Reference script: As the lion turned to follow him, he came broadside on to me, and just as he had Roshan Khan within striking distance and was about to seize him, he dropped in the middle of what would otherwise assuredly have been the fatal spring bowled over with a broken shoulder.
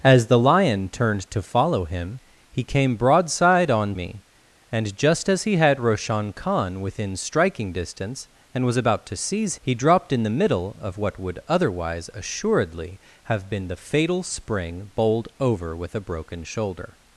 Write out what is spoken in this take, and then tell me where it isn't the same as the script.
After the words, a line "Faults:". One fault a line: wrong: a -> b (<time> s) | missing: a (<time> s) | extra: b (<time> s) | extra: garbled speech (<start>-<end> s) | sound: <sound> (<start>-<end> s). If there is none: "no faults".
As the lion turned to follow him, he came broadside on me, and just as he had Roshan Khan within striking distance and was about to seize he dropped in the middle of what would otherwise assuredly have been the fatal spring bowled over with a broken shoulder.
Faults:
missing: to (4.0 s)
missing: him (9.5 s)